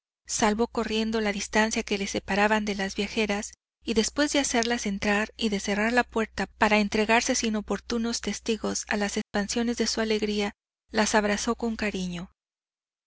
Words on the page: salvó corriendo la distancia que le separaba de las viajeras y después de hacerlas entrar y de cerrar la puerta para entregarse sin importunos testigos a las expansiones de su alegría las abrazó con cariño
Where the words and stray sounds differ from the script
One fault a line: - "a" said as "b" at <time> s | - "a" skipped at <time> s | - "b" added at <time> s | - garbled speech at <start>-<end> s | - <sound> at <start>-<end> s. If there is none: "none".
- dropout at 9.2-9.3 s